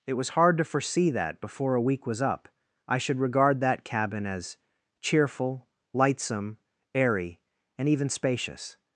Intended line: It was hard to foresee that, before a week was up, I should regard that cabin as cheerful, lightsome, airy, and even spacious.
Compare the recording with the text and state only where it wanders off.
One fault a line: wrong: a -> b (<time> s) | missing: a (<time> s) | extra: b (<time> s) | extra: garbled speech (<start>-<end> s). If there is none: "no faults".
no faults